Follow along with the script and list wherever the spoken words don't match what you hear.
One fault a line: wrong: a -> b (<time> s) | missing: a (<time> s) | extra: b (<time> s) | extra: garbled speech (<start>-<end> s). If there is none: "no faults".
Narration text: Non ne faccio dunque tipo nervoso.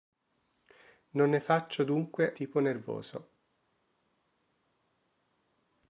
no faults